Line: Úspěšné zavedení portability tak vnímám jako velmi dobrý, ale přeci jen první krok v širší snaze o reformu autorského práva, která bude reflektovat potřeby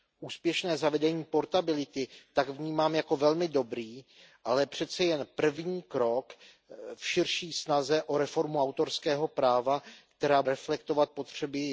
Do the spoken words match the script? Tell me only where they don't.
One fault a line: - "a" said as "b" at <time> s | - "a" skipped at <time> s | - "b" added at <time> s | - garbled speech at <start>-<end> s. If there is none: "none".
- "bude" skipped at 10.4 s